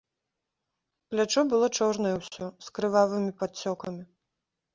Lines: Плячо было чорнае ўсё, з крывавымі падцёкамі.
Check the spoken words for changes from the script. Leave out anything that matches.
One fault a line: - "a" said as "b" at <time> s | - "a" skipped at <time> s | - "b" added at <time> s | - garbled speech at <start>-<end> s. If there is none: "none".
none